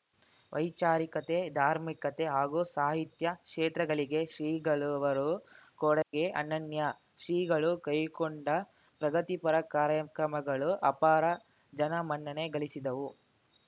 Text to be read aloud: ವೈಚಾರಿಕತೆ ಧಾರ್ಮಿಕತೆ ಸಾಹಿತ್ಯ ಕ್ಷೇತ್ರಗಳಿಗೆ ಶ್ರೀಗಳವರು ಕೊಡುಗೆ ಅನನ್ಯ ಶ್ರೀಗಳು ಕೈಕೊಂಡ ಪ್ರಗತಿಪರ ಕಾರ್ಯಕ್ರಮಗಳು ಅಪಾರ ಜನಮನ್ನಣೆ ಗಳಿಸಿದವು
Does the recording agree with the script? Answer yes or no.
no